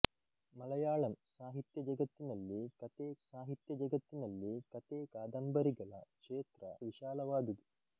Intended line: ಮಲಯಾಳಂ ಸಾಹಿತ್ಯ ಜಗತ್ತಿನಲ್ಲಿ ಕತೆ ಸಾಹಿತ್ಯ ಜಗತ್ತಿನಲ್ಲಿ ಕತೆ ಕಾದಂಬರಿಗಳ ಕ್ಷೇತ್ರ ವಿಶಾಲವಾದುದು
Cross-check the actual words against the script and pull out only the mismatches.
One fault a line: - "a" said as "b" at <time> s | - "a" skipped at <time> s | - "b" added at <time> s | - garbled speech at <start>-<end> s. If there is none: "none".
none